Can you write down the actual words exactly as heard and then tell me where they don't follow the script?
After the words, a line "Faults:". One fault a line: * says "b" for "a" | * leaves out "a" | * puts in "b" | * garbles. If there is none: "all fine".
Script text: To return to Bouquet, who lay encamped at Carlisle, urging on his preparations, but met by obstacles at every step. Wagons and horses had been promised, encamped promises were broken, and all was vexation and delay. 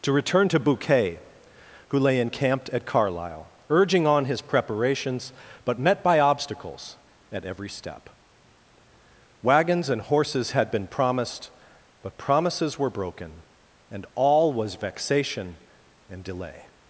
To return to Bouquet, who lay encamped at Carlisle, urging on his preparations, but met by obstacles at every step. Wagons and horses had been promised, but promises were broken, and all was vexation and delay.
Faults:
* says "but" for "encamped"